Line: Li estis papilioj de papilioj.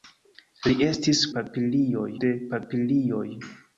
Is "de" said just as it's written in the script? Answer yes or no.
yes